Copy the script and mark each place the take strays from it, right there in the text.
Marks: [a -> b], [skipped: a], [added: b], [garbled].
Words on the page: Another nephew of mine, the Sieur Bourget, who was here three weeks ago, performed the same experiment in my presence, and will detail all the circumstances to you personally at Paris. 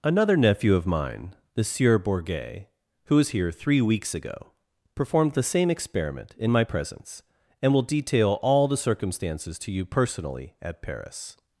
Another nephew of mine, the Sieur Bourget, who was here three weeks ago, performed the same experiment in my presence, and will detail all the circumstances to you personally at Paris.